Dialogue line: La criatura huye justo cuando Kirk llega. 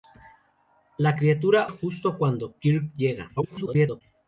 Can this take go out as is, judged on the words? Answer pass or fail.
fail